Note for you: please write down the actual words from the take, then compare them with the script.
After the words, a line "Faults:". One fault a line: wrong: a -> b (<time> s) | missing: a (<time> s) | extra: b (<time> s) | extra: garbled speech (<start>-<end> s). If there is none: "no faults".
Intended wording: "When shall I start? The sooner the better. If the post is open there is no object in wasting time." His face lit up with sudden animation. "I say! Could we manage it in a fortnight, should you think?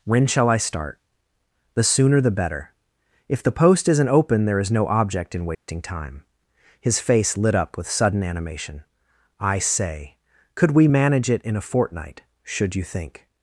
"When shall I start? The sooner the better. If the post isn't open there is no object in wasting time." His face lit up with sudden animation. "I say! Could we manage it in a fortnight, should you think?
Faults:
wrong: is -> isn't (3.9 s)